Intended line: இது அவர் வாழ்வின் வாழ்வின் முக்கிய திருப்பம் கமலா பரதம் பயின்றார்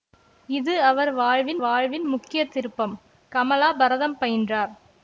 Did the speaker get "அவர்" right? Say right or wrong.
right